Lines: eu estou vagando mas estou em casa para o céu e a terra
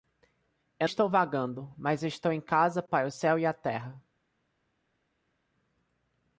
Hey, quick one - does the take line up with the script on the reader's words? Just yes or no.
yes